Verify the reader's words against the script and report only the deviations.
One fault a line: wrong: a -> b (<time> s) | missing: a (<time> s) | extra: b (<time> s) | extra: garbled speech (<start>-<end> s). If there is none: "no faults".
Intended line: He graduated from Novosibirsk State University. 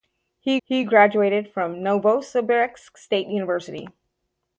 extra: he (0.6 s)